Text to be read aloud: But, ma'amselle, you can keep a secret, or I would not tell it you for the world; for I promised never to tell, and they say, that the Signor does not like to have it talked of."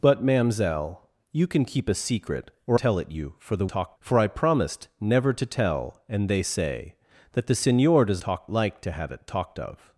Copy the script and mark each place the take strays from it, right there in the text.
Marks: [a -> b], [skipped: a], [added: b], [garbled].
But, ma'amselle, you can keep a secret, or [skipped: I would not] tell it you for the [world; -> talked] for I promised never to tell, and they say, that the Signor does [not -> talked] like to have it talked of."